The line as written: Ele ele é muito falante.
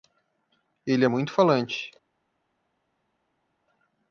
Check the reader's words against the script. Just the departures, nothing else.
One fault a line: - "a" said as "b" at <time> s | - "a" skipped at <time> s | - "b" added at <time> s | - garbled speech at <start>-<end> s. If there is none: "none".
- "ele" skipped at 1.1 s